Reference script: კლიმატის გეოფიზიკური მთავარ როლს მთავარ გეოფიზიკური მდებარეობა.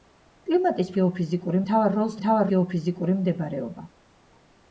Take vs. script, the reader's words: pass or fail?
pass